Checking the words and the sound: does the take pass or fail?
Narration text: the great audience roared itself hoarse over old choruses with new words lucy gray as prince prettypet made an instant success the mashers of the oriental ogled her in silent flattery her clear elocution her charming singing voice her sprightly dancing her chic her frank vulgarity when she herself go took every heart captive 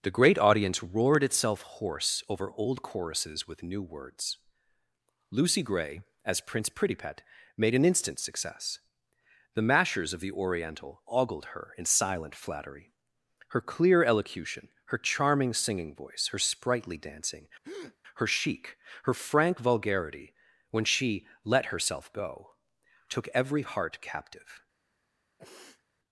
fail